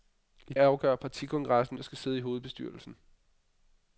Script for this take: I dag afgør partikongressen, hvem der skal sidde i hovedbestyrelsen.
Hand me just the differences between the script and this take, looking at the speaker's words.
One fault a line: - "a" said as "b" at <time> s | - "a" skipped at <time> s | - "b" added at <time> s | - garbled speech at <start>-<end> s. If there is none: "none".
- "dag" skipped at 0.5 s
- "hvem" skipped at 1.8 s